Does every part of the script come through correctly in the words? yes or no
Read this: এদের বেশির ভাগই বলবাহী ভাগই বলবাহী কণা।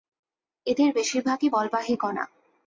no